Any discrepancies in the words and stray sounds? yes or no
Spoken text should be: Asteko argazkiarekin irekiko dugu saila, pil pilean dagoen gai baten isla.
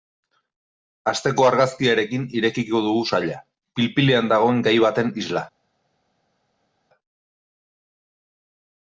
no